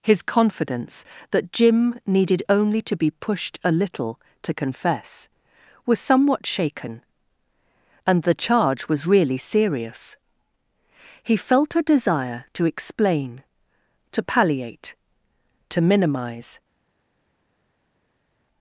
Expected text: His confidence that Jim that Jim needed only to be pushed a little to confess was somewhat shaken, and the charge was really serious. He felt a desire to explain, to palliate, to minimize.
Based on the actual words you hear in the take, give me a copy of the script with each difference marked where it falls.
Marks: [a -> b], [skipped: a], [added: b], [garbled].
His confidence that Jim [skipped: that Jim] needed only to be pushed a little to confess was somewhat shaken, and the charge was really serious. He felt a desire to explain, to palliate, to minimize.